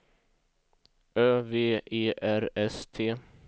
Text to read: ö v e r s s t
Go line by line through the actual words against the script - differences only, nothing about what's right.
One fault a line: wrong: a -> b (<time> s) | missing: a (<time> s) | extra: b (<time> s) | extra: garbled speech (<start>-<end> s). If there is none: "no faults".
missing: s (2.8 s)